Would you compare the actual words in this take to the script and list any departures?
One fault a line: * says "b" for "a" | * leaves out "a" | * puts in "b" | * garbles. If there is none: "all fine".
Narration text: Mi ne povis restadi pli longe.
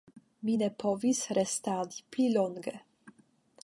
all fine